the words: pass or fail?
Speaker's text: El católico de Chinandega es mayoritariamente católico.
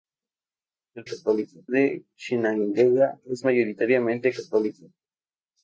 pass